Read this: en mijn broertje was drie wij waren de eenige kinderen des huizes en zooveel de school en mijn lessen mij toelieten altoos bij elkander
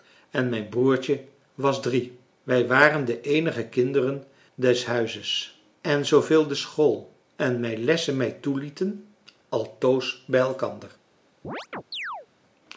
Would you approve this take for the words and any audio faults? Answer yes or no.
no